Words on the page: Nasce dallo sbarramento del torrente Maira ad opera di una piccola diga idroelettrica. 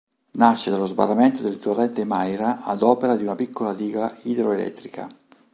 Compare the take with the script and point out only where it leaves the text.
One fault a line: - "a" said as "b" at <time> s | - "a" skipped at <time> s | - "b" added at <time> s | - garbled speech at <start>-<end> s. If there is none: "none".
none